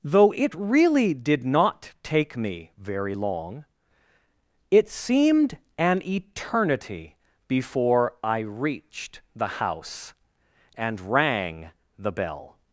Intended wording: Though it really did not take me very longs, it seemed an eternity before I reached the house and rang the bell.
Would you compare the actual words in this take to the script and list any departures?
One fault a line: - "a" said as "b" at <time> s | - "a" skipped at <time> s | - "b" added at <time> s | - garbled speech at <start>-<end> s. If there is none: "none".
- "longs" said as "long" at 3.1 s